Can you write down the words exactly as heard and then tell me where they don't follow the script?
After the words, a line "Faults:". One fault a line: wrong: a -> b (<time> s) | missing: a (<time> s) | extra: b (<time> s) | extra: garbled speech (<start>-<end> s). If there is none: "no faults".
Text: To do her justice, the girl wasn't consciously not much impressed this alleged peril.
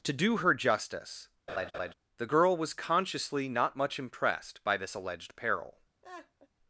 To do her justice, the girl was consciously not much impressed by this alleged peril.
Faults:
wrong: wasn't -> was (2.5 s)
extra: by (4.6 s)